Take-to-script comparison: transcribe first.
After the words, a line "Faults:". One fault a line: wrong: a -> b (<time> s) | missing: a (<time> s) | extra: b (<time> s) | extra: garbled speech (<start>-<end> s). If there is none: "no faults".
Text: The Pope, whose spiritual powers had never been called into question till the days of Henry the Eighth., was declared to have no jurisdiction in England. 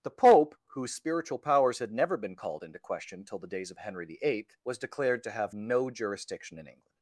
The Pope, whose spiritual powers had never been called into question till the days of Henry the Eighth., was declared to have no jurisdiction in England.
Faults:
no faults